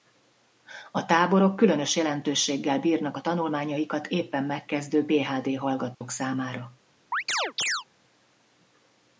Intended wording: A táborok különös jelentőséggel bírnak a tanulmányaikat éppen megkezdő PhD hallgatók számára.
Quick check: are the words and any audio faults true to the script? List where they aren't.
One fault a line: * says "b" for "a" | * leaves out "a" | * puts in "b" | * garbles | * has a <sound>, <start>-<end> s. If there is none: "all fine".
* has a dropout, 5.9-6.0 s
* has a chirp, 7.1-7.8 s